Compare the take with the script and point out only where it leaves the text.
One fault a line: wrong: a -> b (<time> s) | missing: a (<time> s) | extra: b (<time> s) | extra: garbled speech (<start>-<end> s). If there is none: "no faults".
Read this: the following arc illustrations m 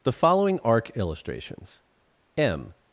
no faults